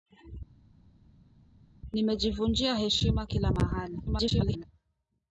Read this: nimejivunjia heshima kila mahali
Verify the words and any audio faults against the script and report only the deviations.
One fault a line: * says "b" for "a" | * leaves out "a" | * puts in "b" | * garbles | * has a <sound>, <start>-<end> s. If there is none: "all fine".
* garbles